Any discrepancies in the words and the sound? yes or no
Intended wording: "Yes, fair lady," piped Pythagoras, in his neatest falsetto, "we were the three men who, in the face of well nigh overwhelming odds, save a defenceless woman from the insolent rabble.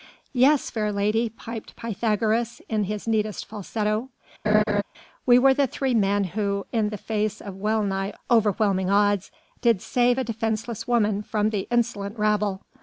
yes